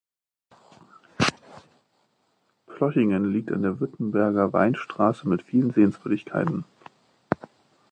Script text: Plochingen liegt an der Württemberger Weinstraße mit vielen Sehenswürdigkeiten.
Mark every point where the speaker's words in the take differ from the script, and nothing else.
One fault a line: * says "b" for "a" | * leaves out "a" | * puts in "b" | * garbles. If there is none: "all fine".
all fine